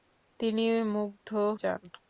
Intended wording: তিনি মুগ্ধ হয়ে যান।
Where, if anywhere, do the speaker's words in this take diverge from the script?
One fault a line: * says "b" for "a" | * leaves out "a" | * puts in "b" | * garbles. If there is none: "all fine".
* leaves out "হয়ে"